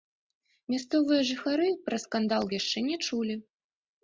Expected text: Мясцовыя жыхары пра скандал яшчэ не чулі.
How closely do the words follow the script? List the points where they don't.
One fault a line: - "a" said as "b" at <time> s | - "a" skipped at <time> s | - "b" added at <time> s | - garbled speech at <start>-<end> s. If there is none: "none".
none